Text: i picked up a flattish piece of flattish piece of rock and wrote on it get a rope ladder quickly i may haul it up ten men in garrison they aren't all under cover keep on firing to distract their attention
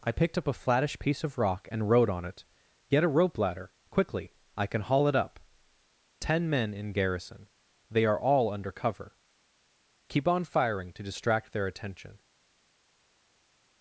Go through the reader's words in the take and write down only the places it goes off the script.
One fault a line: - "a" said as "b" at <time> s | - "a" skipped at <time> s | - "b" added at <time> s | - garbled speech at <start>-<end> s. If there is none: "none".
- "flattish piece of" skipped at 1.4 s
- "may" said as "can" at 4.7 s
- "aren't" said as "are" at 8.1 s